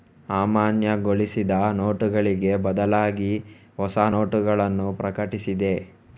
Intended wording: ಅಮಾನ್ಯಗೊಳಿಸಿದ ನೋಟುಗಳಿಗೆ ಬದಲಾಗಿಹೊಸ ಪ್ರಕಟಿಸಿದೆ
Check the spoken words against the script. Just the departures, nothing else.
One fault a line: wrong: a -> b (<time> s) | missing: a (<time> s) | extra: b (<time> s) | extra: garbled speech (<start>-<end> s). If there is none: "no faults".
extra: ನೋಟಗಳನ್ನು (4.1 s)